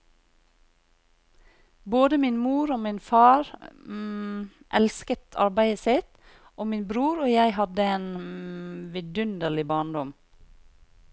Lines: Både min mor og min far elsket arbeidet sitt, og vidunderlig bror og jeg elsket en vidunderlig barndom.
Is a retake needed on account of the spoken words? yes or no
yes